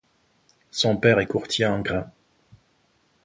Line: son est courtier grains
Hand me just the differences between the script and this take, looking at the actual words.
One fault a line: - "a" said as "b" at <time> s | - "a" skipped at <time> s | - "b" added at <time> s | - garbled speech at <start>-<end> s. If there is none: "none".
- "père" added at 1.0 s
- "en" added at 1.6 s